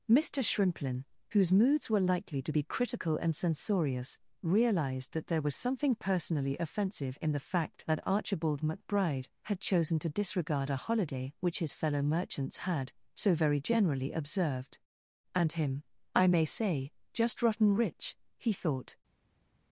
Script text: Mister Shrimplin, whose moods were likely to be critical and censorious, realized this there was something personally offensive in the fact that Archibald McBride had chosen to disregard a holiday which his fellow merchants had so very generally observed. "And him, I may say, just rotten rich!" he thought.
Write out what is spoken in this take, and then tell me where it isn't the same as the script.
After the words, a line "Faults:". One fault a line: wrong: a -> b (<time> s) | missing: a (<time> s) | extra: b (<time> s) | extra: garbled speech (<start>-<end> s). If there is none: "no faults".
Mister Shrimplin, whose moods were likely to be critical and censorious, realized that there was something personally offensive in the fact that Archibald McBride had chosen to disregard a holiday which his fellow merchants had so very generally observed. "And him, I may say, just rotten rich!" he thought.
Faults:
wrong: this -> that (5.1 s)